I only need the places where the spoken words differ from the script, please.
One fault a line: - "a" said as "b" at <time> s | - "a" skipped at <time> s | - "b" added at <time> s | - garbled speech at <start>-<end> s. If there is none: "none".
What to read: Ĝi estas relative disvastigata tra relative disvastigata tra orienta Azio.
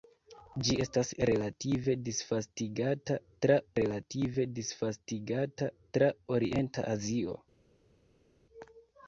none